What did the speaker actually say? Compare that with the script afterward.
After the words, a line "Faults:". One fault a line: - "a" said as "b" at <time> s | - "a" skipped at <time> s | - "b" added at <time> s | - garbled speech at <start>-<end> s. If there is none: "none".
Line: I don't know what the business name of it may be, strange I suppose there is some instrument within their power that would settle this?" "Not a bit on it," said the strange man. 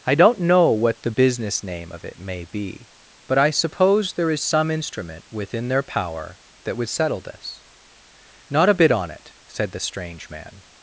I don't know what the business name of it may be, but I suppose there is some instrument within their power that would settle this?" "Not a bit on it," said the strange man.
Faults:
- "strange" said as "but" at 3.3 s